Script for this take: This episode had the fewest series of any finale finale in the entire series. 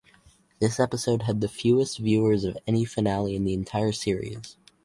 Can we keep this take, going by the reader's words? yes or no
no